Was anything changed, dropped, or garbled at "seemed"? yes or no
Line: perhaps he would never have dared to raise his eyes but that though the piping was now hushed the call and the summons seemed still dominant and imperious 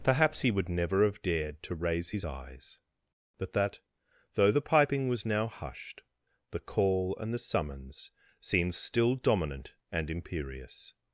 no